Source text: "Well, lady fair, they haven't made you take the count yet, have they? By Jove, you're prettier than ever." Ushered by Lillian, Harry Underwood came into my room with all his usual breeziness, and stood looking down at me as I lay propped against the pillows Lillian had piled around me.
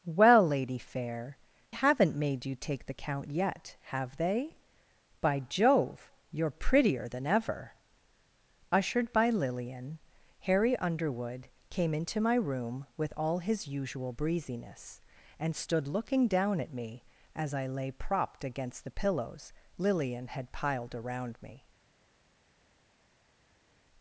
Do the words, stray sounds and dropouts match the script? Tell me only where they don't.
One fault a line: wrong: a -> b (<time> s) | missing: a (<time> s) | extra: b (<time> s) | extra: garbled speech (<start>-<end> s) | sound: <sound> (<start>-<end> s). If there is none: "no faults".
missing: they (1.4 s)